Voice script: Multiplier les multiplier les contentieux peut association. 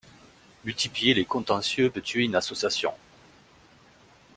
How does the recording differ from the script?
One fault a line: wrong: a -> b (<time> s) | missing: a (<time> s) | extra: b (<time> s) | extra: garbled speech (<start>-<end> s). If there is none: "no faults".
wrong: multiplier les contentieux peut -> contentieux peut tuer une (1.2 s)